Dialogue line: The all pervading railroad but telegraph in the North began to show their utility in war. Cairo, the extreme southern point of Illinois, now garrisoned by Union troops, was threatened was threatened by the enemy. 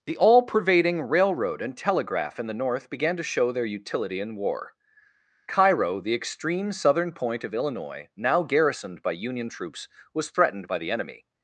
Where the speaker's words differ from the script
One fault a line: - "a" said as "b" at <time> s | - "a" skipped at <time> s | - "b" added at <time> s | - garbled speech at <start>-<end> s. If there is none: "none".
- "but" said as "and" at 1.6 s
- "was threatened" skipped at 10.7 s